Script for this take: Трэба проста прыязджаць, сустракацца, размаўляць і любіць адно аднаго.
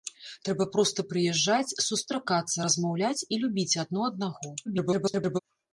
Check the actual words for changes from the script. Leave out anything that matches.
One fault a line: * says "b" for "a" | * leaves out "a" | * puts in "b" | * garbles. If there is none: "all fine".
* garbles